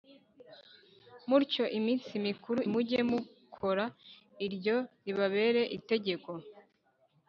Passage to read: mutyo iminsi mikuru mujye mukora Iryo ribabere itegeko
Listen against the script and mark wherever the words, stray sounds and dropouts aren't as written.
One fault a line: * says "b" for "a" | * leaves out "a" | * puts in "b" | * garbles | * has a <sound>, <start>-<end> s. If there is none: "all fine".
all fine